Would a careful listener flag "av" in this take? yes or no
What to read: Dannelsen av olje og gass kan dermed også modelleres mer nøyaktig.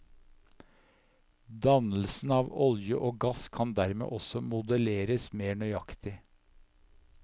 no